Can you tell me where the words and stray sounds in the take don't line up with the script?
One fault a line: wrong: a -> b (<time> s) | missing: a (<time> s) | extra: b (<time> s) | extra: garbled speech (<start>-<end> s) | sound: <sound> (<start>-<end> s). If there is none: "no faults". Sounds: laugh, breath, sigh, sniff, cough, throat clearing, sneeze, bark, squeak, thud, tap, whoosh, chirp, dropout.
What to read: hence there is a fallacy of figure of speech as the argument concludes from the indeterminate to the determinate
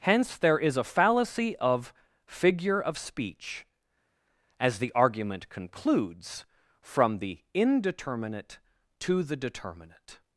no faults